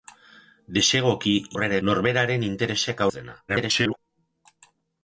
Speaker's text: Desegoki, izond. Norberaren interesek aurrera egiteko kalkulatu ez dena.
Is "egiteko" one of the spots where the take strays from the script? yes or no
yes